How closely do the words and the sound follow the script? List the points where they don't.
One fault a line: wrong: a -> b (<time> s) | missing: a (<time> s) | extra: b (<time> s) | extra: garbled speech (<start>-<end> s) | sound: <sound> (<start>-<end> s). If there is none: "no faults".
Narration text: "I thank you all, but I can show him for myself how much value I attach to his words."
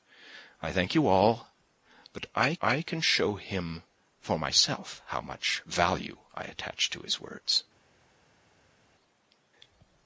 extra: I (2.6 s)